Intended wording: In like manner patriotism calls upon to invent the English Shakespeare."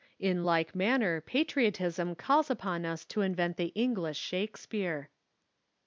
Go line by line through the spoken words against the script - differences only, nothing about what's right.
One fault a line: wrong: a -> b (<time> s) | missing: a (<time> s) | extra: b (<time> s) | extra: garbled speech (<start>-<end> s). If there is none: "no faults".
extra: us (2.8 s)